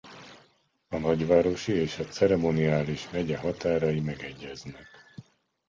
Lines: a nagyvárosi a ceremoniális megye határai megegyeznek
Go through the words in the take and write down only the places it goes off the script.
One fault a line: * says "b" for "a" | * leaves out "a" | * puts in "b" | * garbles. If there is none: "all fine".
* puts in "és"